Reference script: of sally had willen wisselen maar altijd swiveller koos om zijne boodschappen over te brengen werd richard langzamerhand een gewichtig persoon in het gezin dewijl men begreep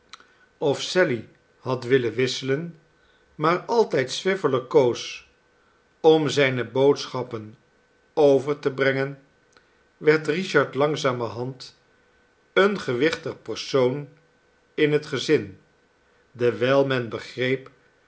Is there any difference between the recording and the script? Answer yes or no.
no